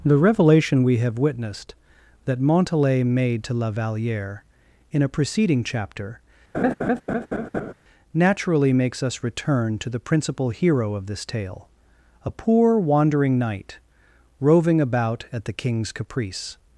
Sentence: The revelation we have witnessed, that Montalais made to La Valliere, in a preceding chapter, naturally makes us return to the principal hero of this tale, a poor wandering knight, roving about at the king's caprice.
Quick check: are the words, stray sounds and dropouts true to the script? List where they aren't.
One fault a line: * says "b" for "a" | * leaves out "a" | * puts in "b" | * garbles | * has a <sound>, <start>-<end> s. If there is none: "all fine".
* has a laugh, 6.5-7.7 s